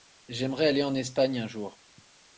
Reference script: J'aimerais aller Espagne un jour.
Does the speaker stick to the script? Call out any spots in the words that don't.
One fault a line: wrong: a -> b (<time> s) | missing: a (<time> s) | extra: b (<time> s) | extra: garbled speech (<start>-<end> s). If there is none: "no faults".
extra: en (0.8 s)